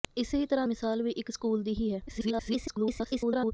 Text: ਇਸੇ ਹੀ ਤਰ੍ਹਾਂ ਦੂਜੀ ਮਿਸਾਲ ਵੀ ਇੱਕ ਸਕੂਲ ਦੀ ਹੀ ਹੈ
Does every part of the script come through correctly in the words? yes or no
no